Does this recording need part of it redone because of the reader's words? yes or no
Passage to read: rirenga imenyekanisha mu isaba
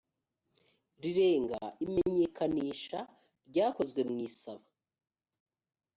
yes